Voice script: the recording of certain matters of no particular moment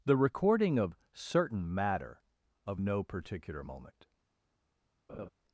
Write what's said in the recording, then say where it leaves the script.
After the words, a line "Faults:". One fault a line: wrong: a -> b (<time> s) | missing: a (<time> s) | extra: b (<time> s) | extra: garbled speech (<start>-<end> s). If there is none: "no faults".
the recording of certain matter of no particular moment
Faults:
wrong: matters -> matter (1.7 s)